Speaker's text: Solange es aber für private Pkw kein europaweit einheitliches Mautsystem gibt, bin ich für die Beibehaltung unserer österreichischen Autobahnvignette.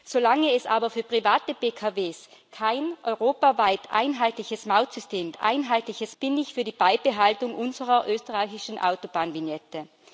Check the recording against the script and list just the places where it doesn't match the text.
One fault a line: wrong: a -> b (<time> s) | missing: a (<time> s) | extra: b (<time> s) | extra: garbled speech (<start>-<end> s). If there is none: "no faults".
wrong: gibt -> einheitliches (5.4 s)